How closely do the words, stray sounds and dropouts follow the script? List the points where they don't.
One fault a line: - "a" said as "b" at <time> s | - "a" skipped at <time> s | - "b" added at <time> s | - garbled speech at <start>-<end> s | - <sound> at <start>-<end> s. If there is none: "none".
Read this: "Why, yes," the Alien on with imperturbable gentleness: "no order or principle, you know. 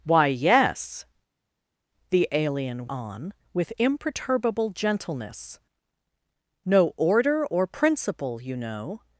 none